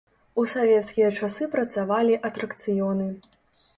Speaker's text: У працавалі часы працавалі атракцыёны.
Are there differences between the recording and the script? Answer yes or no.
yes